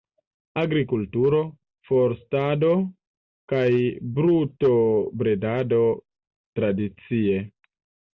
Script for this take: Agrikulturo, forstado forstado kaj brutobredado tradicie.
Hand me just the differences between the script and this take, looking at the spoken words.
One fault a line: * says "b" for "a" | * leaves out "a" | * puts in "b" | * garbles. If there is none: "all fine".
* leaves out "forstado"